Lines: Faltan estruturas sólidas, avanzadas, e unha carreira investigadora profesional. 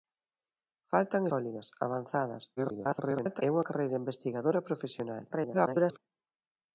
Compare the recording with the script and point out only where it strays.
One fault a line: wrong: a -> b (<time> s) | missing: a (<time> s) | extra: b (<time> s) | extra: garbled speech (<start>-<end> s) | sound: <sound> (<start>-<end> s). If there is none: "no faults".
missing: estruturas (1.2 s)
extra: garbled speech (2.6-3.4 s)
extra: garbled speech (5.3-6.0 s)